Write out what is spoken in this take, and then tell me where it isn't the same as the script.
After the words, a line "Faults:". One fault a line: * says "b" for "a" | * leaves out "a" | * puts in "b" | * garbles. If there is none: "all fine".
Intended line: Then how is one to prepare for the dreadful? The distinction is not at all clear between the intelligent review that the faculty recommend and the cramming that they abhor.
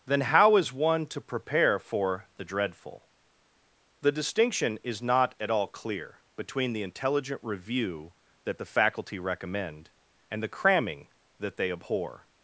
Then how is one to prepare for the dreadful? The distinction is not at all clear between the intelligent review that the faculty recommend and the cramming that they abhor.
Faults:
all fine